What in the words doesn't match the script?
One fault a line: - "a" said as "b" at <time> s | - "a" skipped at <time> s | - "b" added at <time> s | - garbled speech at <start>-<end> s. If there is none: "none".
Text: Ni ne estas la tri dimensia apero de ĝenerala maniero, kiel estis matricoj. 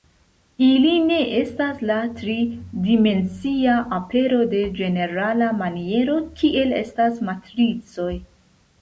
- "Ni" said as "Ili" at 0.7 s
- "estis" said as "estas" at 6.8 s